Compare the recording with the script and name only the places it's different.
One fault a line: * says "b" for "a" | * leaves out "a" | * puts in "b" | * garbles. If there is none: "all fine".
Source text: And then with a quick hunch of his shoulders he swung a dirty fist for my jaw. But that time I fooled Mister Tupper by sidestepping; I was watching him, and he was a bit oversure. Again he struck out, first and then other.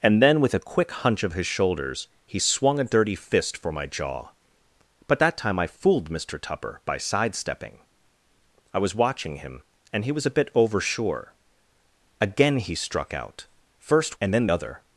all fine